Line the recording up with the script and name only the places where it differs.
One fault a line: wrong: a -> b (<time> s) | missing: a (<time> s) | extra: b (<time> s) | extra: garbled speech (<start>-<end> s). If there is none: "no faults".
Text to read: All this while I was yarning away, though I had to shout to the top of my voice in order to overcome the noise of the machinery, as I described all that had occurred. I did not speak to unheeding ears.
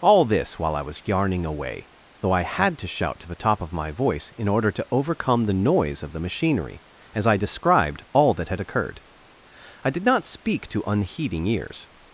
no faults